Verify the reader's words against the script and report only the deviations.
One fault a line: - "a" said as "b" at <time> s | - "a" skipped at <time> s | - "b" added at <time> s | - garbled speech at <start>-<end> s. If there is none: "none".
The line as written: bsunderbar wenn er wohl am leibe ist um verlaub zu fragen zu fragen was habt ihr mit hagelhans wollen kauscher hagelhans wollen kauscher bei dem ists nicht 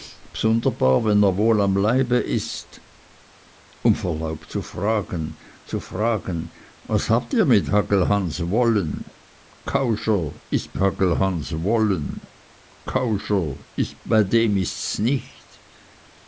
none